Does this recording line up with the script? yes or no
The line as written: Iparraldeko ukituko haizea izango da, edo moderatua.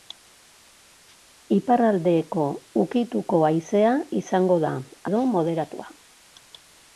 yes